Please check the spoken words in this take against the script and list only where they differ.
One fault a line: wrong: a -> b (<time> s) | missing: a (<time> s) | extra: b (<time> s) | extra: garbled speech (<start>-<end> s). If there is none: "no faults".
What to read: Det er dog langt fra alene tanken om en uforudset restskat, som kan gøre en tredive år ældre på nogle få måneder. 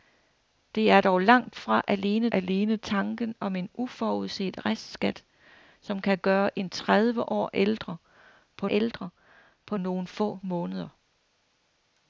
extra: alene (2.3 s)
extra: ældre på (8.7 s)